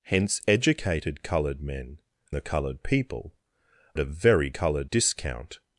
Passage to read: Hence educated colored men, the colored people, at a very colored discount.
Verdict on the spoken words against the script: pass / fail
pass